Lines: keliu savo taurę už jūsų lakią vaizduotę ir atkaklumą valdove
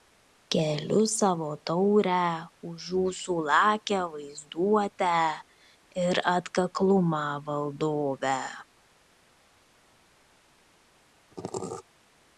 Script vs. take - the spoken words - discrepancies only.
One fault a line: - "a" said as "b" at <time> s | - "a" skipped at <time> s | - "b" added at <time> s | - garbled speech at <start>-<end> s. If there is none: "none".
none